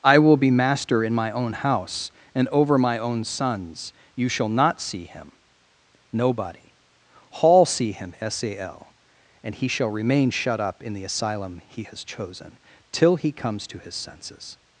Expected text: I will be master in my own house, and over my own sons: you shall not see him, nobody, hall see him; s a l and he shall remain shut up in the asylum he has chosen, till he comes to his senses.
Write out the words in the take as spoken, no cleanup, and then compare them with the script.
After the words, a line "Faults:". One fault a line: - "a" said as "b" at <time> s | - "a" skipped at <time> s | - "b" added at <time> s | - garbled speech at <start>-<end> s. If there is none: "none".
I will be master in my own house, and over my own sons: you shall not see him, nobody, hall see him; s a l and he shall remain shut up in the asylum he has chosen, till he comes to his senses.
Faults:
none